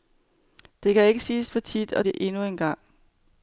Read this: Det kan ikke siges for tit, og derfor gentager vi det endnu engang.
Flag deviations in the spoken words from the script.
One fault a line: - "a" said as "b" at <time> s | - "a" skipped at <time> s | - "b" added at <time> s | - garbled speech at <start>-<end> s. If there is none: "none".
- "derfor gentager vi" skipped at 2.1 s